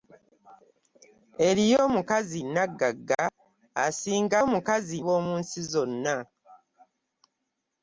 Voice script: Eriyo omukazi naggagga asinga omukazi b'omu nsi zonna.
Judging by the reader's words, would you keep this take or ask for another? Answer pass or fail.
pass